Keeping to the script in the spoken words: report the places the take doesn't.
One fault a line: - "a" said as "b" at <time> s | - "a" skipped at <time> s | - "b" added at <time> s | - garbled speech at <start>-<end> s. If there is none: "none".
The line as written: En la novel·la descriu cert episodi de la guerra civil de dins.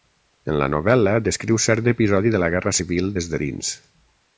- "des" added at 3.2 s